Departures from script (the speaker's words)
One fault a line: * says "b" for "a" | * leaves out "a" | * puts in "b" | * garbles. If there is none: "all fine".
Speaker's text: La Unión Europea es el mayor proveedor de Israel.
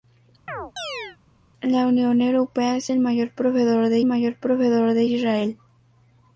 * puts in "mayor proveedor de"